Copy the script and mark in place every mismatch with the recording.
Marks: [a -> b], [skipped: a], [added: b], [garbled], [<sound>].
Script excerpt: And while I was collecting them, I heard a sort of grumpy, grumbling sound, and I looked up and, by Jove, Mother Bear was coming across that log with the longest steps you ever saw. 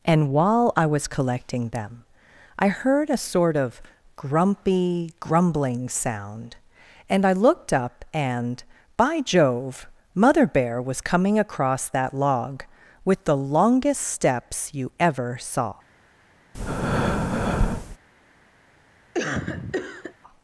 And while I was collecting them, I heard a sort of grumpy, grumbling sound, and I looked up and, by Jove, Mother Bear was coming across that log with the longest steps you ever saw. [breath] [cough]